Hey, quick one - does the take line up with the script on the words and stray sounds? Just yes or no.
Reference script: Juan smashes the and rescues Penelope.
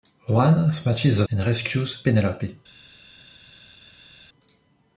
yes